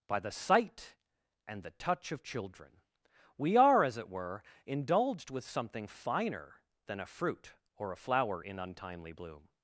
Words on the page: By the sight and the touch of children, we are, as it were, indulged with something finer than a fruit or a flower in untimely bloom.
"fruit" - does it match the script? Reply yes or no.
yes